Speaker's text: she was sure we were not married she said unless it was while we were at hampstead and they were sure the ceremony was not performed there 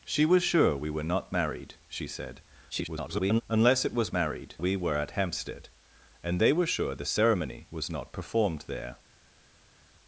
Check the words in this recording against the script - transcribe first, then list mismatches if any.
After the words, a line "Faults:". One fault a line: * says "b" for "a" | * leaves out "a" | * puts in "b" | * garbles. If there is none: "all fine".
she was sure we were not married she said [garbled] unless it was married we were at hampstead and they were sure the ceremony was not performed there
Faults:
* garbles
* says "married" for "while"